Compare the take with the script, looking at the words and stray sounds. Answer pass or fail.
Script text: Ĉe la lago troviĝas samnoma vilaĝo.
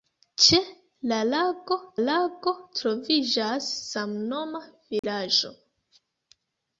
fail